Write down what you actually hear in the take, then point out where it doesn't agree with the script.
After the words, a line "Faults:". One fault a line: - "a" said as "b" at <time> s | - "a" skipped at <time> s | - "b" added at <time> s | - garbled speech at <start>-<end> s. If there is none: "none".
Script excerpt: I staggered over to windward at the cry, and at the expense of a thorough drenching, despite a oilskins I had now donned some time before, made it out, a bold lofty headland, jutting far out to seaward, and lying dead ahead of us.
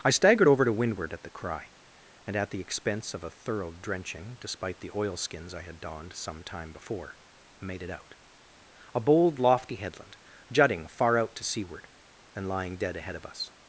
I staggered over to windward at the cry, and at the expense of a thorough drenching, despite the oilskins I had donned some time before, made it out, a bold lofty headland, jutting far out to seaward, and lying dead ahead of us.
Faults:
- "a" said as "the" at 4.8 s
- "now" skipped at 5.8 s